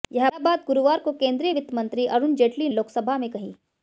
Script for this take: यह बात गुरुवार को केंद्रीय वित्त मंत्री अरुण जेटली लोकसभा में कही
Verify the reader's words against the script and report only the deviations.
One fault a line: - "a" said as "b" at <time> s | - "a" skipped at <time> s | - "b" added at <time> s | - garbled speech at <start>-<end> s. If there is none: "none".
none